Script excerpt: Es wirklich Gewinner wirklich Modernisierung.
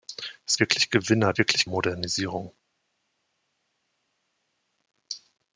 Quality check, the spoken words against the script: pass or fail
pass